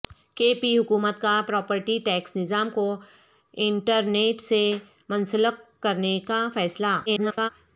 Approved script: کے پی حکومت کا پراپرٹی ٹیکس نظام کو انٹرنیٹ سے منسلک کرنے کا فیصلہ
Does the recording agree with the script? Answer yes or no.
no